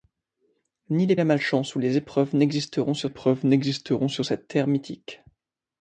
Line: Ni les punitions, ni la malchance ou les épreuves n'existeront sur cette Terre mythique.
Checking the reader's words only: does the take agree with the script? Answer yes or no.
no